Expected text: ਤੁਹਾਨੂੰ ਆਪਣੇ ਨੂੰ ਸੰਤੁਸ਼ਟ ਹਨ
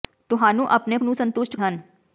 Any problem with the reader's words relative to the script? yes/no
no